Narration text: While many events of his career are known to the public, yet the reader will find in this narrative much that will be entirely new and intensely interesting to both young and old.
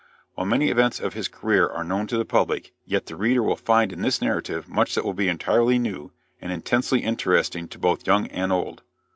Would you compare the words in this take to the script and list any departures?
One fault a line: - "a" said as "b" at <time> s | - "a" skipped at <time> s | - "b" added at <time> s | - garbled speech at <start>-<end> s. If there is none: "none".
none